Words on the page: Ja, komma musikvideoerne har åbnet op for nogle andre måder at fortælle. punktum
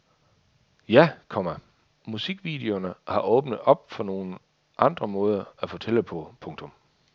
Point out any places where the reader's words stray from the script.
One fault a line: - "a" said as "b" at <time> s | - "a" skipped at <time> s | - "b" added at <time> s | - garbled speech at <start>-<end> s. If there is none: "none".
- "på" added at 6.0 s